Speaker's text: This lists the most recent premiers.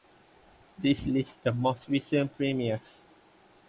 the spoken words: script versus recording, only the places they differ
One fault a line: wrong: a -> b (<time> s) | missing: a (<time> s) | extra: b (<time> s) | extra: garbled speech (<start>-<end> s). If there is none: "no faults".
no faults